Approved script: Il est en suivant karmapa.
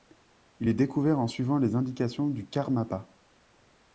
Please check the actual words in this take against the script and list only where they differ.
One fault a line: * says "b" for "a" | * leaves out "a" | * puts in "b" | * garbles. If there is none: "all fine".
* puts in "découvert"
* puts in "les indications du"